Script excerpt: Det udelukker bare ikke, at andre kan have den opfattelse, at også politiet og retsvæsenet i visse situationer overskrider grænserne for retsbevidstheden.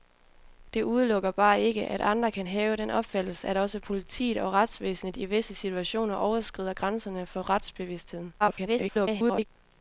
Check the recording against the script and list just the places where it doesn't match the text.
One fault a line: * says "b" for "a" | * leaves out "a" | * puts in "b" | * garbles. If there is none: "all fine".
* garbles